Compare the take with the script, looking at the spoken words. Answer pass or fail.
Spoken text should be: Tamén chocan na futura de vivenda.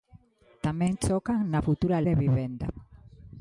pass